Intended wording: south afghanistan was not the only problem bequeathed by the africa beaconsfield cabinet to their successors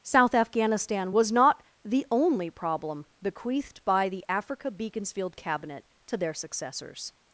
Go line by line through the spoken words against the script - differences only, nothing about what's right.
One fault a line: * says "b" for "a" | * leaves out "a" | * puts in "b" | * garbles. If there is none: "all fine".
all fine